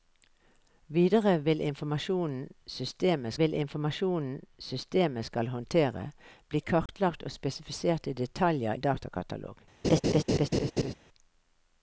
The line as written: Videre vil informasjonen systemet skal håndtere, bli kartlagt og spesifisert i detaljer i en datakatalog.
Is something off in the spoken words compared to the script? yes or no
yes